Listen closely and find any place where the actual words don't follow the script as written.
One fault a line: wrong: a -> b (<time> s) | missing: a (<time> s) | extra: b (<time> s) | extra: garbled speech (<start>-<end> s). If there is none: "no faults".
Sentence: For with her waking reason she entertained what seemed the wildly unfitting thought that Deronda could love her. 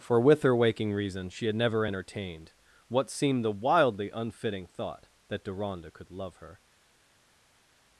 extra: had never (1.4 s)